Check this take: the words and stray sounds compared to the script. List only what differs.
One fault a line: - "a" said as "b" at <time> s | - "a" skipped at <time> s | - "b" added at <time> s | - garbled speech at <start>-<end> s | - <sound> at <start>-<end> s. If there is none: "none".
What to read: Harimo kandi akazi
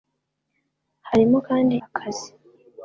none